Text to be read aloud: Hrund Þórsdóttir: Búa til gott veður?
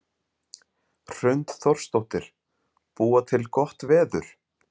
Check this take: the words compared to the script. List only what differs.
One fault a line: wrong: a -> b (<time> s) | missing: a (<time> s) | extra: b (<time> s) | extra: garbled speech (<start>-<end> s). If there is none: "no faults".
no faults